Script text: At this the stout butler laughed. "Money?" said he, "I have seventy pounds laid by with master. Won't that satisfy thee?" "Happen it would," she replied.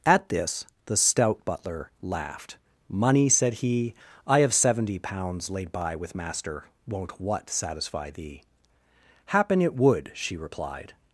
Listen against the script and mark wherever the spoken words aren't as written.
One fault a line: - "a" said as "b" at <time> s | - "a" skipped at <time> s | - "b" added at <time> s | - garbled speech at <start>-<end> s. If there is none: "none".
- "that" said as "what" at 7.2 s